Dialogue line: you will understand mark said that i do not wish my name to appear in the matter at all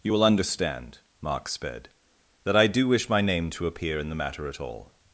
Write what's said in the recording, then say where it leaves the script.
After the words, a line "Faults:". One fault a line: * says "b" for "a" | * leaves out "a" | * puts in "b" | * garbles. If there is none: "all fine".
you will understand mark sped that i do wish my name to appear in the matter at all
Faults:
* says "sped" for "said"
* leaves out "not"